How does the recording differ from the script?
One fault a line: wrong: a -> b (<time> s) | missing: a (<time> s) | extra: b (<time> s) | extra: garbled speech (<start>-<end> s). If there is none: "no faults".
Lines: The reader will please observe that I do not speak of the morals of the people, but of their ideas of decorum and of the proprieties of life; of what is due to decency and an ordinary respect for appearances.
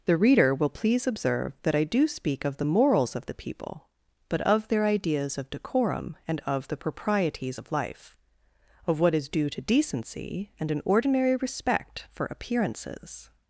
missing: not (2.1 s)